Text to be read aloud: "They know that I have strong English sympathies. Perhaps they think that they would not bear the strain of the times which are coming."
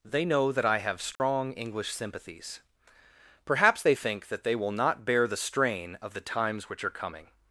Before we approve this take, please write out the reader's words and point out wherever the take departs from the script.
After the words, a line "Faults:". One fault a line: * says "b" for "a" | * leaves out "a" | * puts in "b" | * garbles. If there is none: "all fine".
"They know that I have strong English sympathies. Perhaps they think that they will not bear the strain of the times which are coming."
Faults:
* says "will" for "would"